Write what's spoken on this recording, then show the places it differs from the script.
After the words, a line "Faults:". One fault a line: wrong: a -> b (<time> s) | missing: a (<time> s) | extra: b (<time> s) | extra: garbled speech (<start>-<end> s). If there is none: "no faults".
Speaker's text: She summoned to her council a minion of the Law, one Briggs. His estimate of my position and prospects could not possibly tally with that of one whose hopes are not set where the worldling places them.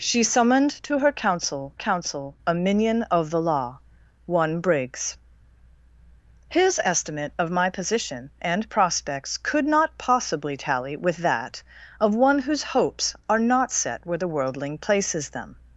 She summoned to her council council a minion of the Law, one Briggs. His estimate of my position and prospects could not possibly tally with that of one whose hopes are not set where the worldling places them.
Faults:
extra: council (1.7 s)